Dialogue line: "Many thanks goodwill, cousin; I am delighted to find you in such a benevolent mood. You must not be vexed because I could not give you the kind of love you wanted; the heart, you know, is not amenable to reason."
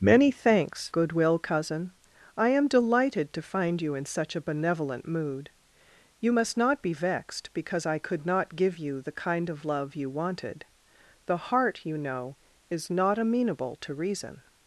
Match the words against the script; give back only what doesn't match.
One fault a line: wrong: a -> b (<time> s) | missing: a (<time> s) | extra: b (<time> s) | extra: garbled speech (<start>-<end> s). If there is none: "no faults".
no faults